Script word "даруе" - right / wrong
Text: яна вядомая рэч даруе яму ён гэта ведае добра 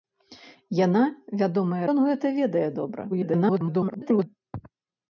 wrong